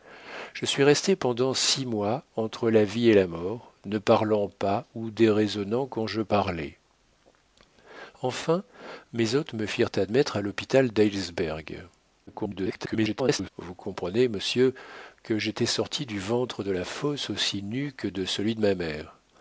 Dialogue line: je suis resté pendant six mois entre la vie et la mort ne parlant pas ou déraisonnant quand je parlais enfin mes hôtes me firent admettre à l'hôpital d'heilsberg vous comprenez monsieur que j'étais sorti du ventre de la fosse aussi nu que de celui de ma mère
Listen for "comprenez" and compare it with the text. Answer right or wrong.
right